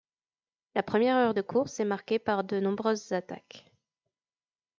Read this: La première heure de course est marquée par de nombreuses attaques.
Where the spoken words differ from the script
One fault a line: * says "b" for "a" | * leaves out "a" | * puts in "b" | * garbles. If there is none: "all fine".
all fine